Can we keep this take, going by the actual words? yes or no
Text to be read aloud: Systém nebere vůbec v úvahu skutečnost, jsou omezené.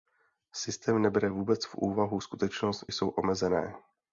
yes